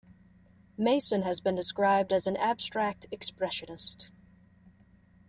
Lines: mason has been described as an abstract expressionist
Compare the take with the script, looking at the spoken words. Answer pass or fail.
pass